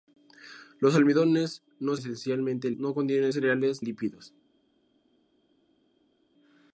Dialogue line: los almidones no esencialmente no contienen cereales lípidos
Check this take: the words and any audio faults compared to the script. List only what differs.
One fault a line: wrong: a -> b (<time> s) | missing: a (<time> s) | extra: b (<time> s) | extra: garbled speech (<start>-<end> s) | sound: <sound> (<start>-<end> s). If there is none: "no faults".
no faults